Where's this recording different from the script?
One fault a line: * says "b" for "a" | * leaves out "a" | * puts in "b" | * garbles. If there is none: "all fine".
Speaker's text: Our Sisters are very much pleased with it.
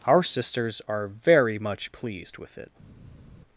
all fine